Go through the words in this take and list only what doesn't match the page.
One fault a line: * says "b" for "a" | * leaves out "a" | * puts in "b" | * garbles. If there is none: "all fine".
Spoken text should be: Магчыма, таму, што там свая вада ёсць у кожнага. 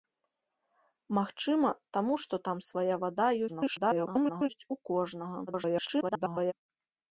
* garbles
* garbles